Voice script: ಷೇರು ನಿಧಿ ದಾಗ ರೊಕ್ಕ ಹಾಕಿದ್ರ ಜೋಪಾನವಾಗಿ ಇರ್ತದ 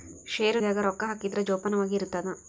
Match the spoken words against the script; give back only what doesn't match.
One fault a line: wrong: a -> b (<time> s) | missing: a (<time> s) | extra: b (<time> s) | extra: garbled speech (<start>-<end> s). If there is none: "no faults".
missing: ನಿಧಿ (0.6 s)